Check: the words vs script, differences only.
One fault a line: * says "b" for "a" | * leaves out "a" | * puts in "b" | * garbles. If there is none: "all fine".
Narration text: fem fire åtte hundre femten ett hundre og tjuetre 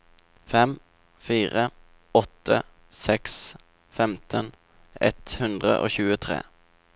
* says "seks" for "hundre"